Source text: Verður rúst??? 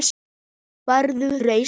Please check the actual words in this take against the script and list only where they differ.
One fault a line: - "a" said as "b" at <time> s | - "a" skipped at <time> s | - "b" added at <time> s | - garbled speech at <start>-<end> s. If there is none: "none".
none